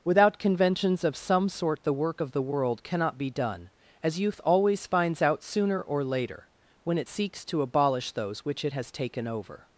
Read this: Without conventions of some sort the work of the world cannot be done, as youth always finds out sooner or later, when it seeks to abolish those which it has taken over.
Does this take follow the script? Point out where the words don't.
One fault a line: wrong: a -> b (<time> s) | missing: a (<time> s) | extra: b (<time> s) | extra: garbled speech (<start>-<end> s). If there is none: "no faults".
no faults